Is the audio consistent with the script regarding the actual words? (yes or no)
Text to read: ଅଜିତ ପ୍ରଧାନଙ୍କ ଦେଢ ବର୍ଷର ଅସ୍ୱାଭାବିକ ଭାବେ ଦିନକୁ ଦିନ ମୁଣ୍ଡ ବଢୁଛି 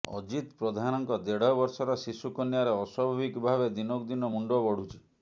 no